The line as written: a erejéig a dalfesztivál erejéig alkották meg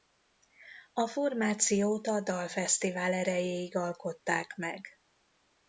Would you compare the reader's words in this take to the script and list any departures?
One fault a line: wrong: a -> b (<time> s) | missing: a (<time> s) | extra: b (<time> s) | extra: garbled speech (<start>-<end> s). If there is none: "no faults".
wrong: erejéig -> formációt (1.1 s)